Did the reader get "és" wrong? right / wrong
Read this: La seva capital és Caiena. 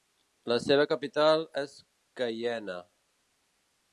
right